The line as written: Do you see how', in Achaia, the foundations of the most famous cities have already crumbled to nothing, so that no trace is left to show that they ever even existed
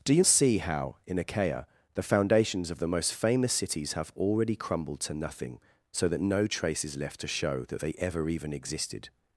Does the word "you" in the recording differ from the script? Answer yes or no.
no